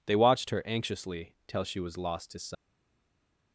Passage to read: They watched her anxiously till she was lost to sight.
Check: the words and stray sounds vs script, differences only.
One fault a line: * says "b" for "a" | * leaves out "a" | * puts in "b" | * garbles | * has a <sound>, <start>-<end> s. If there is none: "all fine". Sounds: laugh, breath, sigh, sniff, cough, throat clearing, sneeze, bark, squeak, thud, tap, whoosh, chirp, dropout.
all fine